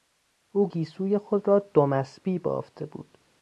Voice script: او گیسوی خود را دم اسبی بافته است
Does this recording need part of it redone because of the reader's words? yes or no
yes